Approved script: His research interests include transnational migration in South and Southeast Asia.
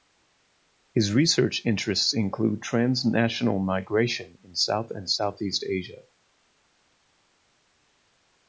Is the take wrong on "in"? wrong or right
right